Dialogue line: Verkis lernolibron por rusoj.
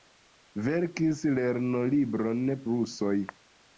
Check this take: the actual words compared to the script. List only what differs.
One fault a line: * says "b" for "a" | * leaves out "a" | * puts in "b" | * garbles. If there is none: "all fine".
* leaves out "por"